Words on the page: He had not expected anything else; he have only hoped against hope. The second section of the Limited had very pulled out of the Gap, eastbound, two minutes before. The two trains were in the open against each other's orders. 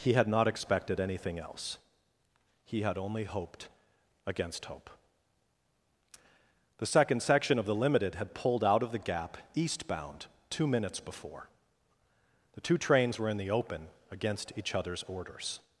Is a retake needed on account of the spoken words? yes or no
yes